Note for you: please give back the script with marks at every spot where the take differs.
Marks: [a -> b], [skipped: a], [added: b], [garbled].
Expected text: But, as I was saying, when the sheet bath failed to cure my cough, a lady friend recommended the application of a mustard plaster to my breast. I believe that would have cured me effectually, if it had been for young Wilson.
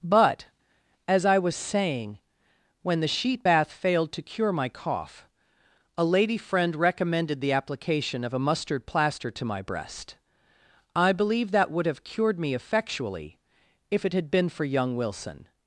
But, as I was saying, when the sheet bath failed to cure my cough, a lady friend recommended the application of a mustard plaster to my breast. I believe that would have cured me effectually, if it had been for young Wilson.